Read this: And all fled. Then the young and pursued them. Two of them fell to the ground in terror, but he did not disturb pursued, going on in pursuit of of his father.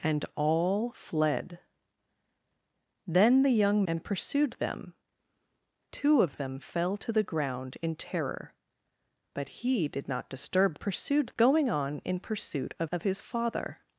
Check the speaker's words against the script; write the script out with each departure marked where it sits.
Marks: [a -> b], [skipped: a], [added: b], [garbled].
And all fled. Then the young and pursued them. Two of them fell to the ground in terror, but he did not disturb pursued, going on in pursuit of of his father.